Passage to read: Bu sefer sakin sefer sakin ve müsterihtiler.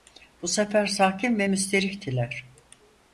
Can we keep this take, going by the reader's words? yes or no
no